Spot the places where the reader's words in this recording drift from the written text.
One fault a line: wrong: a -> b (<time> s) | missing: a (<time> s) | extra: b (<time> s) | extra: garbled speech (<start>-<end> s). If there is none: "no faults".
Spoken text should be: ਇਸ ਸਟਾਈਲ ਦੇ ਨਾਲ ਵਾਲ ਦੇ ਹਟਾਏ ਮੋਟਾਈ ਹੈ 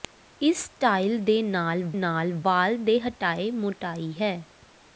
extra: ਨਾਲ (1.9 s)